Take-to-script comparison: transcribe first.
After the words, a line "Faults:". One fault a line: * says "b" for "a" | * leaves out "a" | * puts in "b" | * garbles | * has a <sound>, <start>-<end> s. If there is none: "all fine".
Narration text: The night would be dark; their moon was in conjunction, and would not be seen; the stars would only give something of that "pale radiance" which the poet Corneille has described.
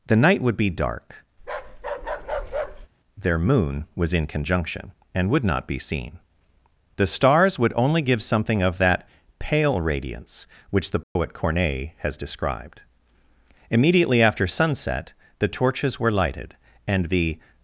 The night would be dark; their moon was in conjunction, and would not be seen; the stars would only give something of that "pale radiance" which the poet Corneille has described. Immediately after sunset the torches were lighted, and the
Faults:
* has a bark, 1.4-2.9 s
* has a dropout, 11.0-11.2 s
* puts in "Immediately after sunset the torches were lighted and the"